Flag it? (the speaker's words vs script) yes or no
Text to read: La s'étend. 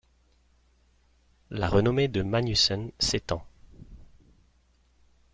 yes